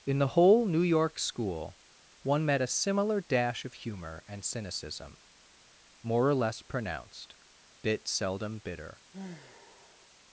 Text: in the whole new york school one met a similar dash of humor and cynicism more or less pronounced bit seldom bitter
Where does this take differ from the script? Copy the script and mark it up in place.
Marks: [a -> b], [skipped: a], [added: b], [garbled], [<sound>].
in the whole new york school one met a similar dash of humor and cynicism more or less pronounced bit seldom bitter [sigh]